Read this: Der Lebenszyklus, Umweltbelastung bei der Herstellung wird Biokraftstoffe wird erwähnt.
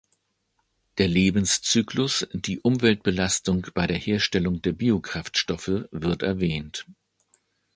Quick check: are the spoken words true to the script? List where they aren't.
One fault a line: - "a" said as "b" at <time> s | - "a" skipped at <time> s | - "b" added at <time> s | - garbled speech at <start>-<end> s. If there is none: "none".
- "die" added at 2.3 s
- "wird" said as "der" at 4.6 s